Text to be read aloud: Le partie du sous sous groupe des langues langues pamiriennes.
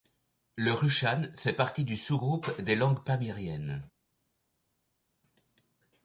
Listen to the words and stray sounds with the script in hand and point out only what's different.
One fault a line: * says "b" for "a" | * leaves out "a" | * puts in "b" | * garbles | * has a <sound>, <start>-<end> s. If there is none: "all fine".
* puts in "rushan fait"
* leaves out "sous"
* leaves out "langues"